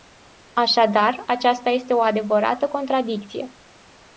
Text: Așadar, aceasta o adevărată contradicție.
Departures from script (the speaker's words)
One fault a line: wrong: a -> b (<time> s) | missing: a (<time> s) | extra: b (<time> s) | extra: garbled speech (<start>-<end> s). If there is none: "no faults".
extra: este (1.7 s)